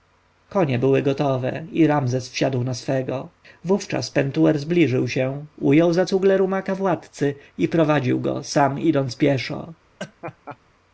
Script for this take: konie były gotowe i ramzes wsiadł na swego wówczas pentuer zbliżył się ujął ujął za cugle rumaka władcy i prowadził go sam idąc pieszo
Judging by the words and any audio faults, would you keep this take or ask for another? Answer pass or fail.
fail